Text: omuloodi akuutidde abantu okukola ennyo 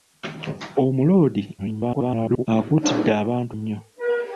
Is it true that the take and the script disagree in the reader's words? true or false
true